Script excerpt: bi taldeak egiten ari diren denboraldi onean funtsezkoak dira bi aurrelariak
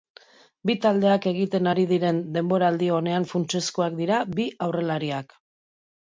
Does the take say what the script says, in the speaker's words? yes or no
yes